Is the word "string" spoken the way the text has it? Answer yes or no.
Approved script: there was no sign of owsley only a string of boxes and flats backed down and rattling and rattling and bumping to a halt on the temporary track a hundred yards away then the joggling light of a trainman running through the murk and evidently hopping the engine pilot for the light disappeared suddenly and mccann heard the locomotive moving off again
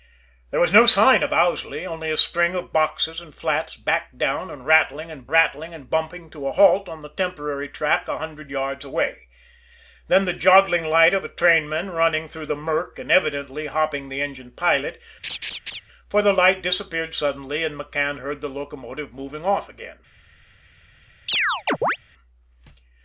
yes